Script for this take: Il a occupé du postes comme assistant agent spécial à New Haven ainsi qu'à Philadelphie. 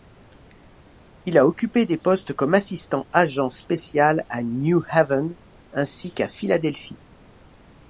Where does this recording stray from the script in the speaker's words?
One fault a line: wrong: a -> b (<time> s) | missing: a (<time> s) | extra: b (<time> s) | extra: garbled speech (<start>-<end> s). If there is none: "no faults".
wrong: du -> des (1.9 s)